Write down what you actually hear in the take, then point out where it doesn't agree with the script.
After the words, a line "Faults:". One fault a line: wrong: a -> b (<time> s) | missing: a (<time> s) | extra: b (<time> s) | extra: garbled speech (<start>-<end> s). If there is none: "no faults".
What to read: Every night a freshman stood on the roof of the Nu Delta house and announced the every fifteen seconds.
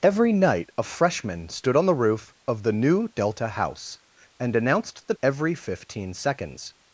Every night a freshman stood on the roof of the Nu Delta house and announced the every fifteen seconds.
Faults:
no faults